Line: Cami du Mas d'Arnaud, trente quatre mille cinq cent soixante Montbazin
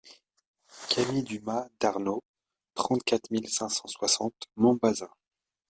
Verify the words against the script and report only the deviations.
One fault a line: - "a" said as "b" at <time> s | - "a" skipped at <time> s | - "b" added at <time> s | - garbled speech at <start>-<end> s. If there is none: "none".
none